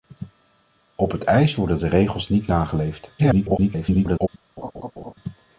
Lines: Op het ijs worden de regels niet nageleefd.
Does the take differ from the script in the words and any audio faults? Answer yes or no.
yes